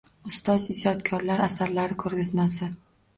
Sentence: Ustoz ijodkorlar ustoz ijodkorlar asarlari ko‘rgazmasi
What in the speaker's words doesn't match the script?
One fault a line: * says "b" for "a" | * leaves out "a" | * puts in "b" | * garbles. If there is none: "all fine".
* leaves out "ustoz ijodkorlar"